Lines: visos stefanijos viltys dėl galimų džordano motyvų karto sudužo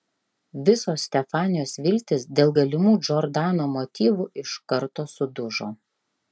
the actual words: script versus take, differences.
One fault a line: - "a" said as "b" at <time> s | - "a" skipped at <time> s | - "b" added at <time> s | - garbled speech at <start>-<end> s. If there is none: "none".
- "iš" added at 4.4 s